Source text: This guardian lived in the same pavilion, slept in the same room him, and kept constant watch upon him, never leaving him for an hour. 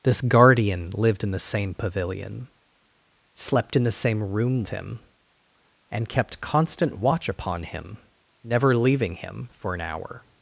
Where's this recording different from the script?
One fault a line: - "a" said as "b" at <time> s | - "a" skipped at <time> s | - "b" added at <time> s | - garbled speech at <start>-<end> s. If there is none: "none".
none